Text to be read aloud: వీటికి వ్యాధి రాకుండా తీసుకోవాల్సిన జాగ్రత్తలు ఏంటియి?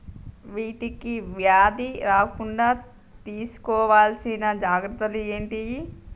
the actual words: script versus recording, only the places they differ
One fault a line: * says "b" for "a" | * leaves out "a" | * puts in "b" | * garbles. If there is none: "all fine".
all fine